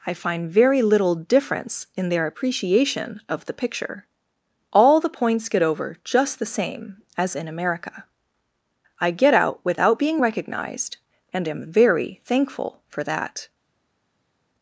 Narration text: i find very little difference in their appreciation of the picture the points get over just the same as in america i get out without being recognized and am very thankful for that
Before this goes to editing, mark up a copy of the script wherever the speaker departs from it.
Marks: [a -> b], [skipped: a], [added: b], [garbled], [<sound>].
i find very little difference in their appreciation of the picture [added: all] the points get over just the same as in america i get out without being recognized and am very thankful for that